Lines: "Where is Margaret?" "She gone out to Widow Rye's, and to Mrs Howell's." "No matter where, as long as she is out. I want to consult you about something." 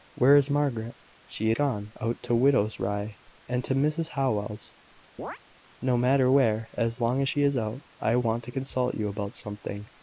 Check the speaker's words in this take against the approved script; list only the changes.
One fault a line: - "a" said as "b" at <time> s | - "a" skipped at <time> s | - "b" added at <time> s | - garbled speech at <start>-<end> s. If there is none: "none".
none